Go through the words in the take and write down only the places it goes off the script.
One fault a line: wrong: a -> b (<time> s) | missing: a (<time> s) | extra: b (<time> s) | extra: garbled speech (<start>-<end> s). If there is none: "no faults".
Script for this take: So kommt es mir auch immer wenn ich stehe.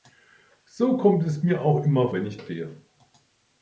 no faults